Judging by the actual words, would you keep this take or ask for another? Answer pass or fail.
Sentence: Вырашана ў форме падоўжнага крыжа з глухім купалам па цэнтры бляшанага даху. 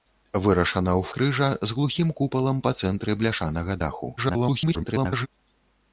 fail